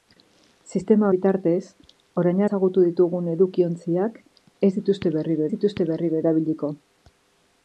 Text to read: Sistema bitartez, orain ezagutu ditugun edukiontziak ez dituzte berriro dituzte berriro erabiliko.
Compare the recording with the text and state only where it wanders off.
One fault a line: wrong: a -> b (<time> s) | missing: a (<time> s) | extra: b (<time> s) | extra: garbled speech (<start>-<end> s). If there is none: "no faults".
no faults